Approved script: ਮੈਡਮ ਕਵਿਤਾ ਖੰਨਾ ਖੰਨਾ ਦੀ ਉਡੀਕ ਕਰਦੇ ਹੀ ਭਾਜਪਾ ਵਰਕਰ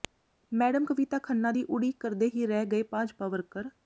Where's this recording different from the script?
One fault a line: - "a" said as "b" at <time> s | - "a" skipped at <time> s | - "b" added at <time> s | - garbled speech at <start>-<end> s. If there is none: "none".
- "ਖੰਨਾ" skipped at 1.5 s
- "ਰਹਿ ਗਏ" added at 2.5 s